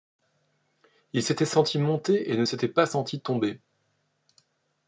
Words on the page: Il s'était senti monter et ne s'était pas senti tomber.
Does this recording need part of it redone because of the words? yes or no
no